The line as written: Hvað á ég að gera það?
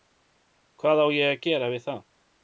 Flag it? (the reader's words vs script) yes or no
yes